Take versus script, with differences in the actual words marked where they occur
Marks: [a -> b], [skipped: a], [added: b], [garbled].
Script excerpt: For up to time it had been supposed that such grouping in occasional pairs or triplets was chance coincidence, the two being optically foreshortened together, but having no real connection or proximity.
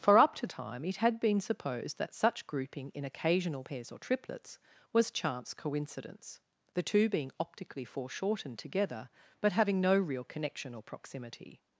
For up to time it had been supposed that such grouping in occasional pairs or triplets was chance coincidence, the two being optically foreshortened together, but having no real connection or proximity.